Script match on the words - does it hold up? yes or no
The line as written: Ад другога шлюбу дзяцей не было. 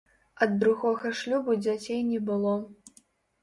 yes